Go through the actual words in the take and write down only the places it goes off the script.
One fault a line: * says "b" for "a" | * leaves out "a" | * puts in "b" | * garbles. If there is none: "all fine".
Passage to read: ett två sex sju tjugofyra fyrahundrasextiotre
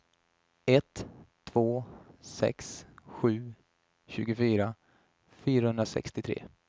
all fine